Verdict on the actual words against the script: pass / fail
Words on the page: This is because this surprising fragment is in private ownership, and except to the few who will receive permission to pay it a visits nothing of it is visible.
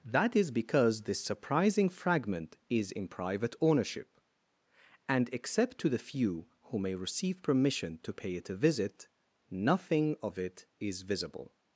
fail